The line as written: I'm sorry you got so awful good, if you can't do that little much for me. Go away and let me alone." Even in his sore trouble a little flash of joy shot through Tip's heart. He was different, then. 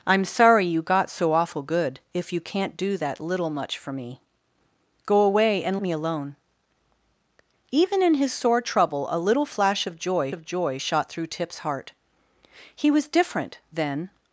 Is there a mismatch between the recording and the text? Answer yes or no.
yes